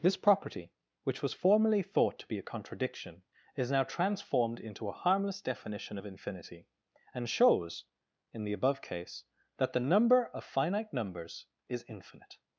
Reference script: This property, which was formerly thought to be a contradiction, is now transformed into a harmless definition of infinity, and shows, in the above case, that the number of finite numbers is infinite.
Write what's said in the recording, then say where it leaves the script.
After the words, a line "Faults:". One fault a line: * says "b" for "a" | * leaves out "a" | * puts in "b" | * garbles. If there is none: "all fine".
This property, which was formerly thought to be a contradiction, is now transformed into a harmless definition of infinity, and shows, in the above case, that the number of finite numbers is infinite.
Faults:
all fine